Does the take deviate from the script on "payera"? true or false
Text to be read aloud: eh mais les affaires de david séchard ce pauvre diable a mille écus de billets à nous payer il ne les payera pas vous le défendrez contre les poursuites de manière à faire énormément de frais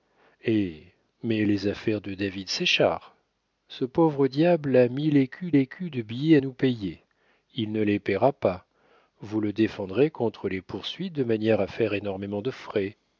false